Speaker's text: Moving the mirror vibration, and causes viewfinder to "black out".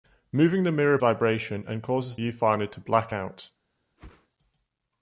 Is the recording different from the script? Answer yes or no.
no